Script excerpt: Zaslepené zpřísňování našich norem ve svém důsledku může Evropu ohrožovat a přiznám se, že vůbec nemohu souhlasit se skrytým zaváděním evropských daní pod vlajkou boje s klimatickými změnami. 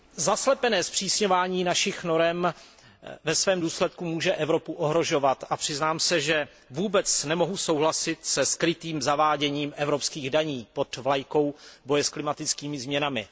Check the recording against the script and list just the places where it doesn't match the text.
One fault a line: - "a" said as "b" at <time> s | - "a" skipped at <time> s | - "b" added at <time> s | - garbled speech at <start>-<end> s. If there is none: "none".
none